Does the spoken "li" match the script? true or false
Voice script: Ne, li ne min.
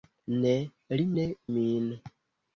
true